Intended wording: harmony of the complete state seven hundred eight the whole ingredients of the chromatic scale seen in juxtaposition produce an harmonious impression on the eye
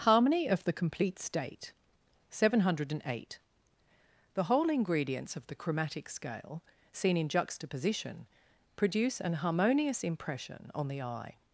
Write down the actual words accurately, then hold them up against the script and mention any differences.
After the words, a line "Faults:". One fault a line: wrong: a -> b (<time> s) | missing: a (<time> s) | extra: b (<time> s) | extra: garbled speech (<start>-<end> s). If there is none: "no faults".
harmony of the complete state seven hundred eight the whole ingredients of the chromatic scale seen in juxtaposition produce an harmonious impression on the eye
Faults:
no faults